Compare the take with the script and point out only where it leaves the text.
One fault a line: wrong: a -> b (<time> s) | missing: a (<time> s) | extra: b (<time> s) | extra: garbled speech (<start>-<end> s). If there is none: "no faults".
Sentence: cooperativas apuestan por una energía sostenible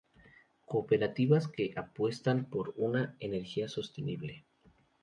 extra: que (1.5 s)